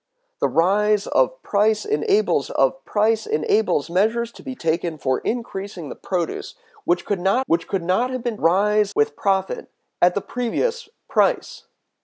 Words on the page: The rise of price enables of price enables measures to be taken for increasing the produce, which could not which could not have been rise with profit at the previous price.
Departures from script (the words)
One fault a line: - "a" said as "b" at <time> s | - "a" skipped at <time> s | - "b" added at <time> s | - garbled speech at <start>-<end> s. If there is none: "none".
none